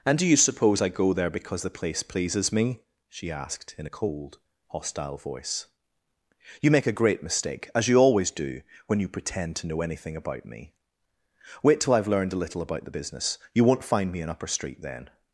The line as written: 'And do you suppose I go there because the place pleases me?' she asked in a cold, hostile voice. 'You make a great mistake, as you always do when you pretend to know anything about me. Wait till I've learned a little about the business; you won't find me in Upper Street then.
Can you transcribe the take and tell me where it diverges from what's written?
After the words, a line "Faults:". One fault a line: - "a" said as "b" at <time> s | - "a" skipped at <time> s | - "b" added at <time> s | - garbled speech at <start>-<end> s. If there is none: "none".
'And do you suppose I go there because the place pleases me?' she asked in a cold, hostile voice. 'You make a great mistake, as you always do when you pretend to know anything about me. Wait till I've learned a little about the business; you won't find me in Upper Street then.
Faults:
none